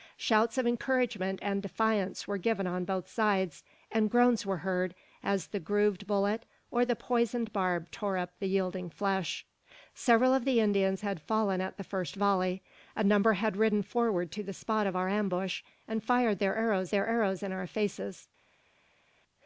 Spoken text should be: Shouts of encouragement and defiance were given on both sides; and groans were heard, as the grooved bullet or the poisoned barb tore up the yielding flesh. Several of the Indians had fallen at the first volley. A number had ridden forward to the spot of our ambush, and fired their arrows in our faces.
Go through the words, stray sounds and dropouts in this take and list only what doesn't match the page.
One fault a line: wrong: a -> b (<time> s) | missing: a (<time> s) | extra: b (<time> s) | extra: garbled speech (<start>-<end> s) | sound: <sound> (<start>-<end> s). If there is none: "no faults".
extra: their arrows (16.9 s)